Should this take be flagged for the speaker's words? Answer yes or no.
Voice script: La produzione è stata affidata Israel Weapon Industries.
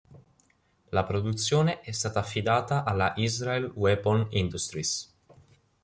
yes